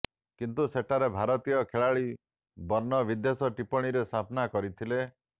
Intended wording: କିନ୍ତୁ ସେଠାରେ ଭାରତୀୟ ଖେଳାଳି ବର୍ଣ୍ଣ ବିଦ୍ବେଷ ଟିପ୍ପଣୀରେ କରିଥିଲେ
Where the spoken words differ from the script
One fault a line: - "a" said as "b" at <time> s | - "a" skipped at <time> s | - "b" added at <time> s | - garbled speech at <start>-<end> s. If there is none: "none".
- "ସାମ୍ନା" added at 4.1 s